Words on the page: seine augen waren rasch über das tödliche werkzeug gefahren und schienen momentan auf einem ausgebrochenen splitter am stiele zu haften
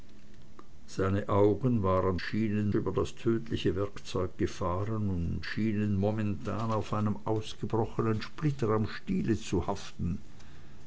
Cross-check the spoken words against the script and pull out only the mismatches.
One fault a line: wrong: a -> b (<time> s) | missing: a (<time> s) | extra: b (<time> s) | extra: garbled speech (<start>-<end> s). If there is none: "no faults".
wrong: rasch -> schienen (2.2 s)